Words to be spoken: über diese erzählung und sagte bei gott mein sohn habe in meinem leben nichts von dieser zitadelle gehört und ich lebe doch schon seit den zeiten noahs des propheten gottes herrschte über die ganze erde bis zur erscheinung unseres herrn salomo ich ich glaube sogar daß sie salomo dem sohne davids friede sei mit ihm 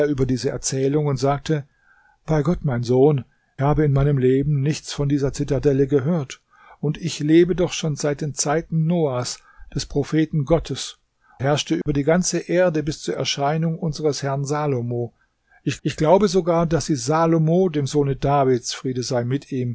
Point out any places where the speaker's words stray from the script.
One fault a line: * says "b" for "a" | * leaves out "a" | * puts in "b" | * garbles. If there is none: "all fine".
all fine